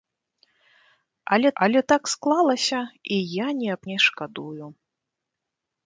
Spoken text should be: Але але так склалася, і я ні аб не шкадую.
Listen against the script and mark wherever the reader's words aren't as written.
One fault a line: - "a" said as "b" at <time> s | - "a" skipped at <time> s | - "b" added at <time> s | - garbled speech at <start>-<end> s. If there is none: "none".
none